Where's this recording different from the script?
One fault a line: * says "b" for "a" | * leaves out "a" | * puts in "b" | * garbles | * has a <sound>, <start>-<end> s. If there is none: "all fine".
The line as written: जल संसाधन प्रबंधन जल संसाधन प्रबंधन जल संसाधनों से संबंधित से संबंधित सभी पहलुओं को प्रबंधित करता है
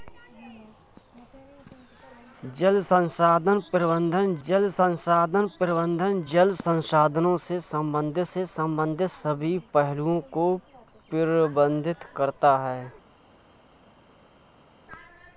all fine